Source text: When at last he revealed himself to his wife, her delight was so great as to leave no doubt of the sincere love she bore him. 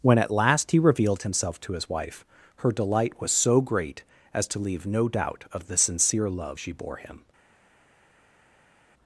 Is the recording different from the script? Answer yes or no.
no